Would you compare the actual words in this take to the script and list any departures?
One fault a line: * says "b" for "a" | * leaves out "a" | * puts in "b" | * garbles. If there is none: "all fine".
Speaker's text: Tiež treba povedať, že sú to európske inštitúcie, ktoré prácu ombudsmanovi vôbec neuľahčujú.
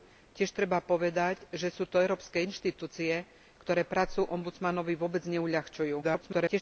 * garbles